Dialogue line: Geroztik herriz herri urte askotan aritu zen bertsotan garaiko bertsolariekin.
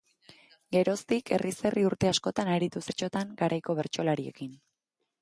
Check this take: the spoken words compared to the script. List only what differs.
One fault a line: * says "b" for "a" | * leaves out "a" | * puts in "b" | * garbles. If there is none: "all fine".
* leaves out "zen"